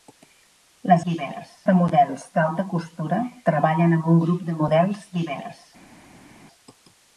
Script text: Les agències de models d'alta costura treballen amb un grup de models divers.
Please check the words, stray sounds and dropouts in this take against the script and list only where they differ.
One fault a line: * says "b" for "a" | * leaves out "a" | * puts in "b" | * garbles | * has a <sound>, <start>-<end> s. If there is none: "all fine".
* says "divers" for "agències"